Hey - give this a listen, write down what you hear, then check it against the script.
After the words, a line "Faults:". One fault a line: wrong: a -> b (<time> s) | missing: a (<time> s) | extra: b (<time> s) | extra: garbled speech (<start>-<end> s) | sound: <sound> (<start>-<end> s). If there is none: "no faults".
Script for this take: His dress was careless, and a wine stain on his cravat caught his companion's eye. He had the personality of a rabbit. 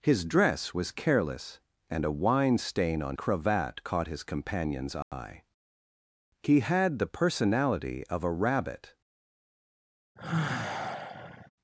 His dress was careless, and a wine stain on cravat caught his companion's eye. He had the personality of a rabbit.
Faults:
missing: his (3.2 s)
sound: dropout (5.0-5.1 s)
sound: sigh (10.2-11.5 s)